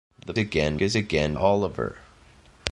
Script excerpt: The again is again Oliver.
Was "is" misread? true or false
false